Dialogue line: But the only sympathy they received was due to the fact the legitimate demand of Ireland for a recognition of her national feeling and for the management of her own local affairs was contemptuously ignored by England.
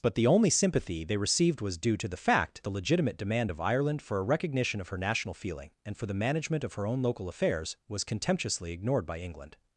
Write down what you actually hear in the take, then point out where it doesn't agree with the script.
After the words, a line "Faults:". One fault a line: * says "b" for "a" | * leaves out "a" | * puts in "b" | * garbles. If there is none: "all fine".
But the only sympathy they received was due to the fact the legitimate demand of Ireland for a recognition of her national feeling and for the management of her own local affairs was contemptuously ignored by England.
Faults:
all fine